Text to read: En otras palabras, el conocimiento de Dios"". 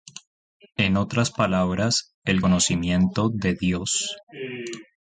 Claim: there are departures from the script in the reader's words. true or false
false